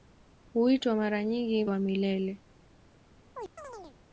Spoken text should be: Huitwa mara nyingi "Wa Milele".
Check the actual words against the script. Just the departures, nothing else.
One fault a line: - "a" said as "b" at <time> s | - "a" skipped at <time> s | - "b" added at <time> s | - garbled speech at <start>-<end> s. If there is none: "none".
none